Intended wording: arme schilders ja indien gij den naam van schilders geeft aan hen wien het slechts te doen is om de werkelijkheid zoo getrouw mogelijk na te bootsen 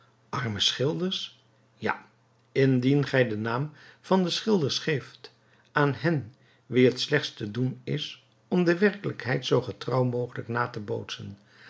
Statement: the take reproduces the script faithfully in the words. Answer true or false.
true